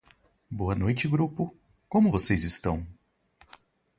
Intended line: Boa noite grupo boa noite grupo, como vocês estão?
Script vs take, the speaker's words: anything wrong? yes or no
yes